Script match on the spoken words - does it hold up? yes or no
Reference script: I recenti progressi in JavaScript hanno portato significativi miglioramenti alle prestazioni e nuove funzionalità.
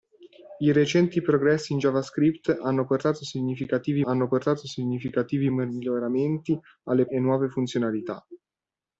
no